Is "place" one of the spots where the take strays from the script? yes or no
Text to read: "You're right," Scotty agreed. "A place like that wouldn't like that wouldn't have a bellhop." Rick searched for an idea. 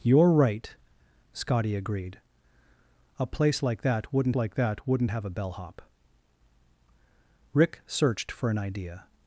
no